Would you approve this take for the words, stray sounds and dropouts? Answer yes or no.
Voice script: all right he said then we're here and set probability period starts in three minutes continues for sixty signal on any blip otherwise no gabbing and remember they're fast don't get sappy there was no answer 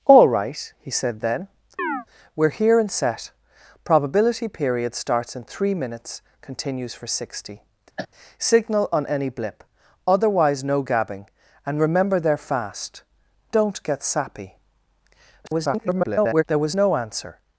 no